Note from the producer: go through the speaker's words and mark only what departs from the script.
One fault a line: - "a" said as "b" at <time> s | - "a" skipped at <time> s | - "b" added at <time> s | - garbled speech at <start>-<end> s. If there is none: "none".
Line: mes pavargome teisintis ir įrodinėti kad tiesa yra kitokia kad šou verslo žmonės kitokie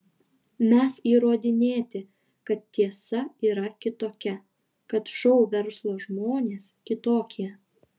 - "pavargome teisintis ir" skipped at 0.9 s